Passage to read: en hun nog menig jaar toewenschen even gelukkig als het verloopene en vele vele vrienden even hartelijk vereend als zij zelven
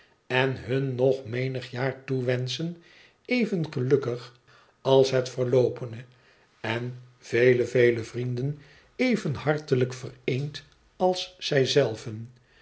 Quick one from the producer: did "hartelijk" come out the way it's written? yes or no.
yes